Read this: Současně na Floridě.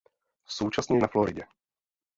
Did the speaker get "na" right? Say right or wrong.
right